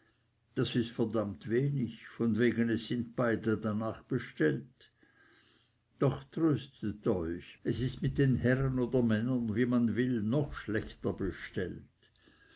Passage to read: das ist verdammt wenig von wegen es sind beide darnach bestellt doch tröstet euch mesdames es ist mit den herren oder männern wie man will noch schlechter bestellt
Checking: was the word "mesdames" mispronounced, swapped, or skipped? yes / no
yes